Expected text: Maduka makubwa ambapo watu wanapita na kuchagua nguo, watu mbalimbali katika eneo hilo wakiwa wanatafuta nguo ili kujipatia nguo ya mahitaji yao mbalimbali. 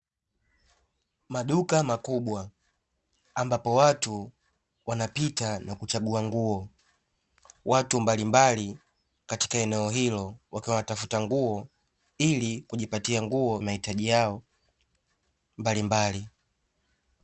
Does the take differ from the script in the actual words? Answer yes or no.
yes